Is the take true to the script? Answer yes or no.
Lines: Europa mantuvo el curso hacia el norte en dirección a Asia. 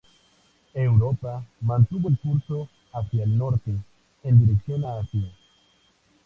yes